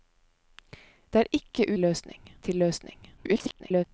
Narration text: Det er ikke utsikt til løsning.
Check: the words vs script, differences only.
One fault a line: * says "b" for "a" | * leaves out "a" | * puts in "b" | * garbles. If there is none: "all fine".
* says "løsning" for "utsikt"
* garbles